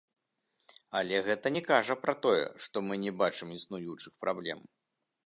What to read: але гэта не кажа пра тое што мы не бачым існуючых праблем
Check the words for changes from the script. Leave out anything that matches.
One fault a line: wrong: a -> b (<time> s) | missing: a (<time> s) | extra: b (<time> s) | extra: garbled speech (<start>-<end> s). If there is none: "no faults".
no faults